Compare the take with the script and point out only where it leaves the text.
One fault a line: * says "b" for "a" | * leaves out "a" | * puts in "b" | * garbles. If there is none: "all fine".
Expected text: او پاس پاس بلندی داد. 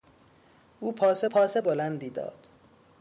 all fine